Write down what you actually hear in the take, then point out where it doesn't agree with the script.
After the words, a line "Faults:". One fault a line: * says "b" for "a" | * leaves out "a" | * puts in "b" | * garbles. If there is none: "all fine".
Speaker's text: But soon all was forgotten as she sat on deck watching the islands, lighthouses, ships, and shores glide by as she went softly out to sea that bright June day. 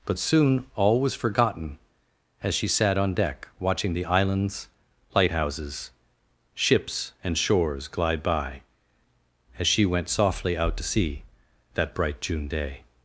But soon all was forgotten as she sat on deck watching the islands, lighthouses, ships, and shores glide by as she went softly out to sea that bright June day.
Faults:
all fine